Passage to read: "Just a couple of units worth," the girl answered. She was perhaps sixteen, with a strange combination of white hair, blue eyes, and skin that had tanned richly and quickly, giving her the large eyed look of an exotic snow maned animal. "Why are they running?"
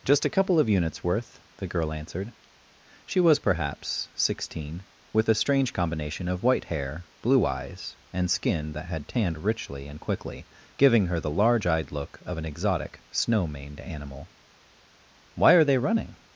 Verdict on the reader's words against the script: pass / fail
pass